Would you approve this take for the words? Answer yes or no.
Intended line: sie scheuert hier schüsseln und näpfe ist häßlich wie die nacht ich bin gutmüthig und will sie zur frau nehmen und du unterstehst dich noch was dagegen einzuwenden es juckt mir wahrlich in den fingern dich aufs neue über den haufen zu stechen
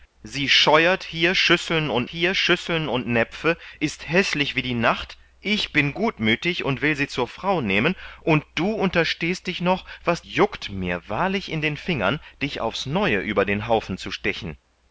no